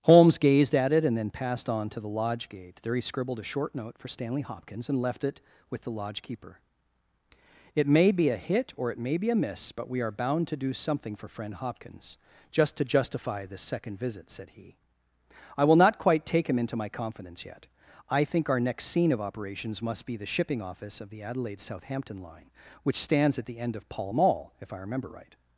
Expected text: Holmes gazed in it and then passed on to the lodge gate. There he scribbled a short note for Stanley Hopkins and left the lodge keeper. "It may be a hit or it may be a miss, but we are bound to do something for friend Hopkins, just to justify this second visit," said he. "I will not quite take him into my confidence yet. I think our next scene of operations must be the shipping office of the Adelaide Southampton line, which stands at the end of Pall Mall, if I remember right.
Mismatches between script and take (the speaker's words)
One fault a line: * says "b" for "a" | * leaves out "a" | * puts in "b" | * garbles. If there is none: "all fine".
* says "at" for "in"
* puts in "it with"